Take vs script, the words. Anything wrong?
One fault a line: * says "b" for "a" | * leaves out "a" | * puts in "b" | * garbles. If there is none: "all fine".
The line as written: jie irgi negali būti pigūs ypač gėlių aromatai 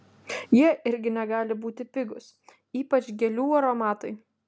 all fine